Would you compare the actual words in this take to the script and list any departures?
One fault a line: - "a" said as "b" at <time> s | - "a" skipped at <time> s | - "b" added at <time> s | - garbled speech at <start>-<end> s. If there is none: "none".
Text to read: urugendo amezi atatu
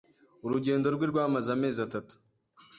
- "rwe rwamaze" added at 0.9 s